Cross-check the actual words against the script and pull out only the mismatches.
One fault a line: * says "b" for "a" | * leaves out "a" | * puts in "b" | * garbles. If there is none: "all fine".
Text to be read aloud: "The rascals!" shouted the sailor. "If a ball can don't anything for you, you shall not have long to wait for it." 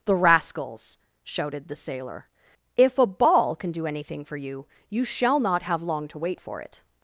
* says "do" for "don't"